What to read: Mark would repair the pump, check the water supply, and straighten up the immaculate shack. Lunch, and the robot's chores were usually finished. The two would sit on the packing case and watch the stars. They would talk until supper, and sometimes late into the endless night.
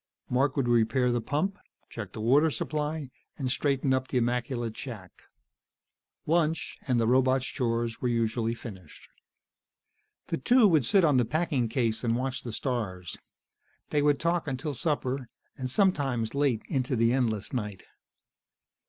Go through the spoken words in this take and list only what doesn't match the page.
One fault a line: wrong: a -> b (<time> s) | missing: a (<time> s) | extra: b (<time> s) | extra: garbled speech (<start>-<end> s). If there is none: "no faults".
no faults